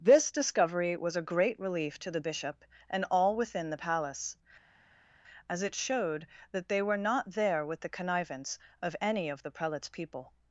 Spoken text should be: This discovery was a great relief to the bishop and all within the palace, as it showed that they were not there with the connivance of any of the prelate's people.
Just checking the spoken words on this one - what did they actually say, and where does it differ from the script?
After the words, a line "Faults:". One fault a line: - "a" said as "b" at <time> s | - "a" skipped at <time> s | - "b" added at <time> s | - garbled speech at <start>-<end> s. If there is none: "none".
This discovery was a great relief to the bishop and all within the palace, as it showed that they were not there with the connivance of any of the prelate's people.
Faults:
none